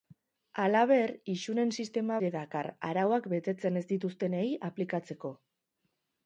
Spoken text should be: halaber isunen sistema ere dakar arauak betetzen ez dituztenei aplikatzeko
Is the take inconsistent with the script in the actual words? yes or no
no